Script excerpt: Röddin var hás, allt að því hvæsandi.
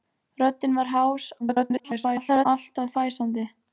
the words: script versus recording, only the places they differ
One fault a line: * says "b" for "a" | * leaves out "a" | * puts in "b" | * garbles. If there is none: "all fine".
* garbles
* leaves out "því"